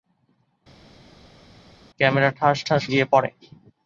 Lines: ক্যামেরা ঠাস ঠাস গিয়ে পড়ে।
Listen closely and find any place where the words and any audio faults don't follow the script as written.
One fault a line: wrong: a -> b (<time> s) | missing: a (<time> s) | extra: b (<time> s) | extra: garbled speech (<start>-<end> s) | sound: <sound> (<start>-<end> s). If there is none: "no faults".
no faults